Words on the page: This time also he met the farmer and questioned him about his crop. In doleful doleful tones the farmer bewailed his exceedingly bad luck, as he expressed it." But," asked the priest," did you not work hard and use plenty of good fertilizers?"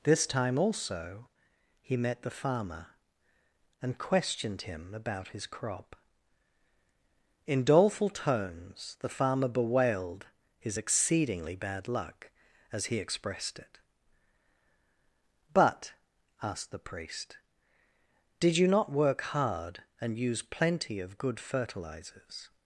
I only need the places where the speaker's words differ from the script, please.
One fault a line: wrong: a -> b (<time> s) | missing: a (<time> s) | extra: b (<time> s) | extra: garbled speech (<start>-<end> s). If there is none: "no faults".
missing: doleful (8.1 s)